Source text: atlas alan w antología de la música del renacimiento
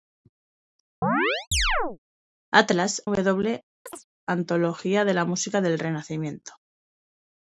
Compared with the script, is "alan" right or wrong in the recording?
wrong